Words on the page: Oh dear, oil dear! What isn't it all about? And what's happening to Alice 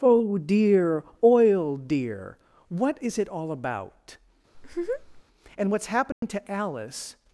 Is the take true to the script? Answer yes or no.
no